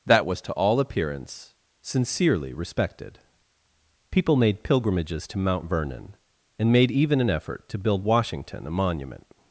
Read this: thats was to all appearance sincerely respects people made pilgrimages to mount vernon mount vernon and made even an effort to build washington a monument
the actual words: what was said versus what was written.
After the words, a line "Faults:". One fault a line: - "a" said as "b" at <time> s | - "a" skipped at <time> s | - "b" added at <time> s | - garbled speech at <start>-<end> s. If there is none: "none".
that was to all appearance sincerely respected people made pilgrimages to mount vernon and made even an effort to build washington a monument
Faults:
- "thats" said as "that" at 0.1 s
- "respects" said as "respected" at 2.5 s
- "mount vernon" skipped at 6.2 s